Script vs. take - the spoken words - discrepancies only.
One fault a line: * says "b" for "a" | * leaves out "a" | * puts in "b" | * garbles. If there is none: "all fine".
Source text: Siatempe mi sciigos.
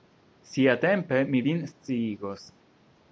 * puts in "vin"